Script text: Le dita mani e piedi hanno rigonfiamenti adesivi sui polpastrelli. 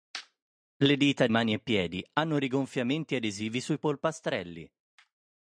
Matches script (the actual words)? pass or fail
pass